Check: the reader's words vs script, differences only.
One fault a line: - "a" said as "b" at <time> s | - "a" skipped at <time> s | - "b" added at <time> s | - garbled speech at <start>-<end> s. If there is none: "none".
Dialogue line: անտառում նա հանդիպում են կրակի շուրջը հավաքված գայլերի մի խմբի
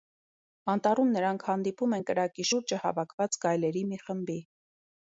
- "նա" said as "նրանք" at 1.2 s